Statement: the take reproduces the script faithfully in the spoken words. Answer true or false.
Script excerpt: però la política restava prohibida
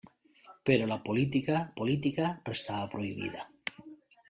false